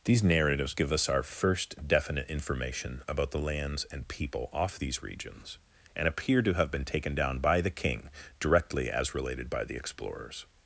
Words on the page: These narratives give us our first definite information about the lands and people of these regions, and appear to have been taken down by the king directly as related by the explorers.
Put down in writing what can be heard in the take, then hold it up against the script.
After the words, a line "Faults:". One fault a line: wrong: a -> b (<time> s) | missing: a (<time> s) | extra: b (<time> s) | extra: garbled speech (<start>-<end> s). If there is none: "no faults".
These narratives give us our first definite information about the lands and people off these regions, and appear to have been taken down by the king directly as related by the explorers.
Faults:
wrong: of -> off (4.5 s)